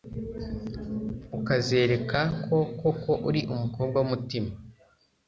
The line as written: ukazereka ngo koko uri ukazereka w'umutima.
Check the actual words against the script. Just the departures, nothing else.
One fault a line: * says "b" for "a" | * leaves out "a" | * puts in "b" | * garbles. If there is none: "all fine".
* says "ko" for "ngo"
* says "umukobwa" for "ukazereka"